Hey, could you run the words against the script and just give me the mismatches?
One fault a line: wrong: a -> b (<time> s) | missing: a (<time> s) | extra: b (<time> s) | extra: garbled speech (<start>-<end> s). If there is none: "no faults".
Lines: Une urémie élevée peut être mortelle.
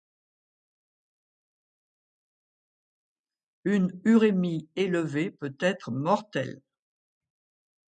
no faults